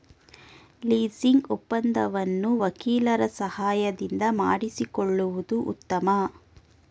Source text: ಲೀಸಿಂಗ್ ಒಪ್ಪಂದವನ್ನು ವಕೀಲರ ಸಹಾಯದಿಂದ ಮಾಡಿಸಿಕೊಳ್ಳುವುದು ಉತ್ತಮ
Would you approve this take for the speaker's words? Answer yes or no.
yes